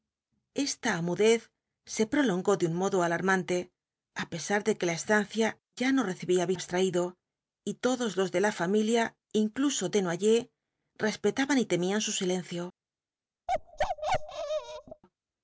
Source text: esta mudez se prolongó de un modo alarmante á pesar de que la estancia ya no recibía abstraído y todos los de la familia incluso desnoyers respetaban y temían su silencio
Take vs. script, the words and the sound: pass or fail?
fail